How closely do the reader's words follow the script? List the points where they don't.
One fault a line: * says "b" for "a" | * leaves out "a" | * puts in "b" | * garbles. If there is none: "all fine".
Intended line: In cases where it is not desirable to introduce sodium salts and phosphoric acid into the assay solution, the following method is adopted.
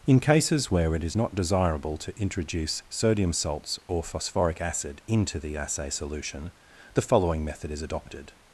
* says "or" for "and"